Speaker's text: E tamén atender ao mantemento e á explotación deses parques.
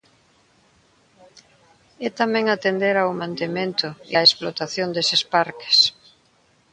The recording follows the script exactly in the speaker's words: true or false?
true